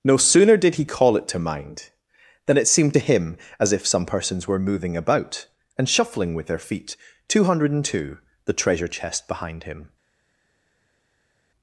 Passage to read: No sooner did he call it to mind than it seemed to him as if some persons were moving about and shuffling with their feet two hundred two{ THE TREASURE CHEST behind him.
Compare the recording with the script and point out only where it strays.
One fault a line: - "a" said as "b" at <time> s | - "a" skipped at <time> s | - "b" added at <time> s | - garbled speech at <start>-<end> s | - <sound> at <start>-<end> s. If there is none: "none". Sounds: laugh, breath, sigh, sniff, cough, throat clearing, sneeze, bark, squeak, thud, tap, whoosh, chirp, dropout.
none